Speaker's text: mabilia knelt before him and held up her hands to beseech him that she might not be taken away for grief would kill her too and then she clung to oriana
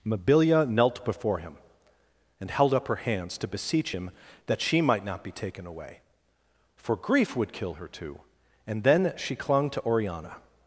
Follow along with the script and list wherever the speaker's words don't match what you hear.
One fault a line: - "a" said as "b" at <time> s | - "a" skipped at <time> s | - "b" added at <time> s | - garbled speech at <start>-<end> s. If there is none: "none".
none